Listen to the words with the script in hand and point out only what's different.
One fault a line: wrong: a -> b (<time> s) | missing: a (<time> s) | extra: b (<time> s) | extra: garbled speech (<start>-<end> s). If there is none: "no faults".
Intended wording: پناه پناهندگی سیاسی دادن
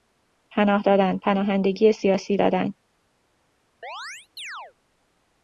extra: دادن (0.8 s)